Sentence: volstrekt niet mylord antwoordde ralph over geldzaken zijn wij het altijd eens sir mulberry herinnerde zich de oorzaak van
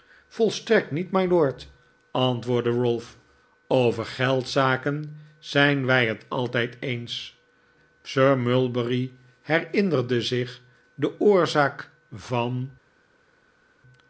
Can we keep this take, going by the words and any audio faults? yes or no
yes